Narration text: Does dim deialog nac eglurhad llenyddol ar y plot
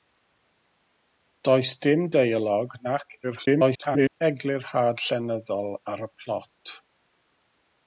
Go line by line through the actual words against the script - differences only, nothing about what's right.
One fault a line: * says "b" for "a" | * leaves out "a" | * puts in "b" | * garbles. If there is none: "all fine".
* garbles